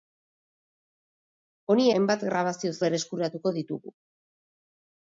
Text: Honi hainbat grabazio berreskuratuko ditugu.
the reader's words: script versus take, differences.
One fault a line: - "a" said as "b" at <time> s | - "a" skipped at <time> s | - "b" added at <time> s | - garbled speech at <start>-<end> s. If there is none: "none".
none